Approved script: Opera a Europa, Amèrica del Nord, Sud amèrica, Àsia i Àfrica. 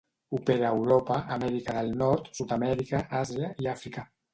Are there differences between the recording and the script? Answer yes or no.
no